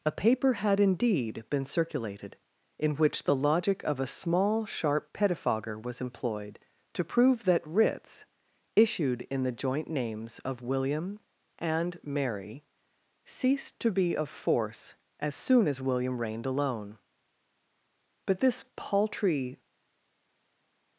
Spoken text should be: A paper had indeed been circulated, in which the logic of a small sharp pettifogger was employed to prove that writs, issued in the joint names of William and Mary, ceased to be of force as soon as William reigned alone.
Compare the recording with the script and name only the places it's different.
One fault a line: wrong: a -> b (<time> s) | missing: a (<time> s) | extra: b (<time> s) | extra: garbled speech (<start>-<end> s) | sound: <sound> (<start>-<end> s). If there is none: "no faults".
extra: But this paltry (18.2 s)